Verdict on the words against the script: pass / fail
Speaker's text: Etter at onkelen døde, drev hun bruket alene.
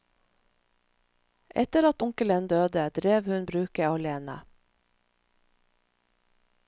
pass